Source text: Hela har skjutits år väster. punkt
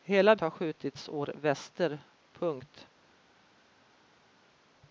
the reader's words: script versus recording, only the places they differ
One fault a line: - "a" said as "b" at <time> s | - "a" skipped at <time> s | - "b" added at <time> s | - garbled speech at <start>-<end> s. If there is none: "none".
none